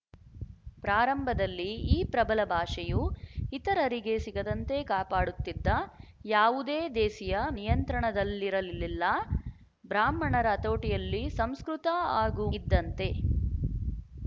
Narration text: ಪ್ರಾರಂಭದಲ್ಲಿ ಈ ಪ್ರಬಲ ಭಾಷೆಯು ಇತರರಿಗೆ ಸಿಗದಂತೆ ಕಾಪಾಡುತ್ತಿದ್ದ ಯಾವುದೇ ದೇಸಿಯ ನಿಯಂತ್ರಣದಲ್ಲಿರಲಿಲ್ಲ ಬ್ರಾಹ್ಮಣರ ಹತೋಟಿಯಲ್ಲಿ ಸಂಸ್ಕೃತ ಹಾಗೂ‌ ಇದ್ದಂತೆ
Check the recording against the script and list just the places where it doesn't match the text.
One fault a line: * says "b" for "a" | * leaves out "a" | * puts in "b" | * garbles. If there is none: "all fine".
all fine